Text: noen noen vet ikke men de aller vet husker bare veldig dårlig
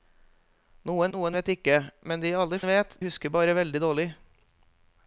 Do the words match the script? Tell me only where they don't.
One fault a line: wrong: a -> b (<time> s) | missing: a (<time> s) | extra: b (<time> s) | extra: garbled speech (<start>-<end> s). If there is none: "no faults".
no faults